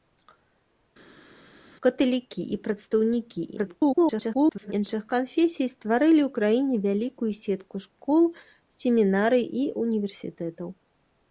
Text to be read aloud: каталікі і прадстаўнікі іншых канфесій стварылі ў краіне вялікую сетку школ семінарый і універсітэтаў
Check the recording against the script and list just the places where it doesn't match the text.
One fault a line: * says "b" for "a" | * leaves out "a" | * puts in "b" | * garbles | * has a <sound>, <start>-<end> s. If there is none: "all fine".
* garbles